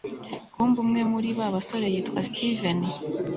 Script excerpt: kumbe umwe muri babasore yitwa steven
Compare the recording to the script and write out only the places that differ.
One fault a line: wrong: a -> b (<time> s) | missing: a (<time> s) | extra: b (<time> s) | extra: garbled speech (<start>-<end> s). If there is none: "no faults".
no faults